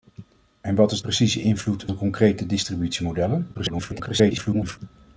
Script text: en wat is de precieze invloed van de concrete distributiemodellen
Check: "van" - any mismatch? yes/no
yes